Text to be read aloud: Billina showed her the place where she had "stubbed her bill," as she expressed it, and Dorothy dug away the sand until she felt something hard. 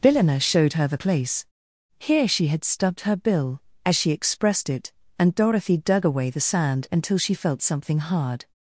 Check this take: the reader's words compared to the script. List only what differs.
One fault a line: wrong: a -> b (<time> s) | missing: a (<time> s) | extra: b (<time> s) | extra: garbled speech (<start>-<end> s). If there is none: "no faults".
wrong: where -> here (2.0 s)